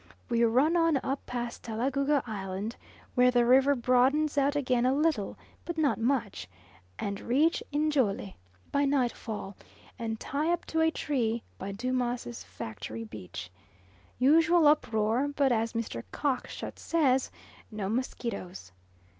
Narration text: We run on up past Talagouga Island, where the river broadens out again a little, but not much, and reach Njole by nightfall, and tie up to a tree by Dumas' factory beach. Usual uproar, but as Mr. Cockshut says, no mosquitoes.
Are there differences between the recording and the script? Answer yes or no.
no